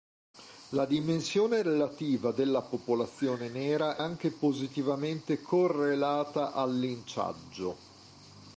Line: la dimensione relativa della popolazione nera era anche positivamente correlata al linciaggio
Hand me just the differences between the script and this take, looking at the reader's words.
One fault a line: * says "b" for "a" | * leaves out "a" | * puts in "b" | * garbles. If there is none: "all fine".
* leaves out "era"